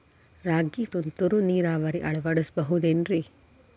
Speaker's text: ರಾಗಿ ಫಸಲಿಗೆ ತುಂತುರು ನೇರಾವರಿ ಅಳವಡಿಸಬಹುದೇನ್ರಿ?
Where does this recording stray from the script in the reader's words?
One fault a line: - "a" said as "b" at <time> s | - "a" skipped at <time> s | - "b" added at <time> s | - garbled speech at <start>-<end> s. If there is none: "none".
- "ಫಸಲಿಗೆ" skipped at 0.8 s